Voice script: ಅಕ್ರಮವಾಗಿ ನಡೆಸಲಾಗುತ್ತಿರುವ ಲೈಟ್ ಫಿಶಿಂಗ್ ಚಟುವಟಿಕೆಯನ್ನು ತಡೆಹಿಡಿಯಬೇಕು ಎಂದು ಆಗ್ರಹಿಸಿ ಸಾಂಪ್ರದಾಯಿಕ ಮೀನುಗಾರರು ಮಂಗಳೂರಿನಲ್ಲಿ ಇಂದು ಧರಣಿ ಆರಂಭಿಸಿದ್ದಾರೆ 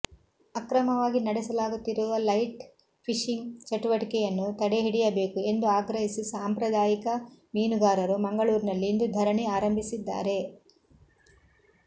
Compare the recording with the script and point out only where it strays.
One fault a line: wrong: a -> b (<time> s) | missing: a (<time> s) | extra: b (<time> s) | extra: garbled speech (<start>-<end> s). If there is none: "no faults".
no faults